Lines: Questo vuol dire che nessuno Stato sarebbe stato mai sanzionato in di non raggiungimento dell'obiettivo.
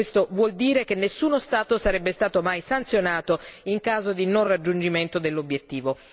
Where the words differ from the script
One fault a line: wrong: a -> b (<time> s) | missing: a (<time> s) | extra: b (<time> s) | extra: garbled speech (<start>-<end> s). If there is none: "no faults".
extra: caso (3.8 s)